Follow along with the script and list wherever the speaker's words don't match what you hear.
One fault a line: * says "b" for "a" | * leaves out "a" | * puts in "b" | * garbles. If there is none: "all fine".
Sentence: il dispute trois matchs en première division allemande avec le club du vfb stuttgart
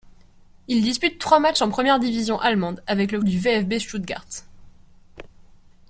* leaves out "club"